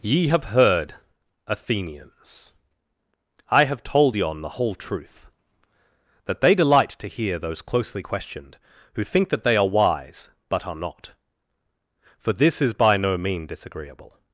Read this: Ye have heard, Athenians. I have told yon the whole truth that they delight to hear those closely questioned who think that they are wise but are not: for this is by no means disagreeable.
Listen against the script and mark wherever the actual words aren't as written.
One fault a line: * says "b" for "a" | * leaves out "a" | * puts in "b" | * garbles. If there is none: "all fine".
* says "mean" for "means"